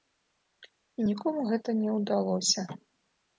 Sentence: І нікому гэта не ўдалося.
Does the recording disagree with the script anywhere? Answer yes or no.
no